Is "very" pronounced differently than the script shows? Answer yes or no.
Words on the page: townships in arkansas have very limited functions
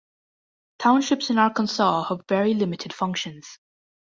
no